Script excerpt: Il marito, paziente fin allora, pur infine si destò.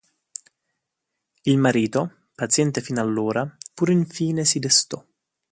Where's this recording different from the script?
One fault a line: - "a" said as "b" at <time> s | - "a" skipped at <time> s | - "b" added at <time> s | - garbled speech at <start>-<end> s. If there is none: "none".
none